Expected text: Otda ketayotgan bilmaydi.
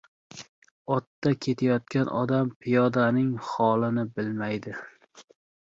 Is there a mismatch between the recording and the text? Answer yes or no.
yes